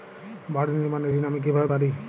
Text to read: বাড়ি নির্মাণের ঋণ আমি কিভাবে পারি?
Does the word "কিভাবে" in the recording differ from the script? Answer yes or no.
no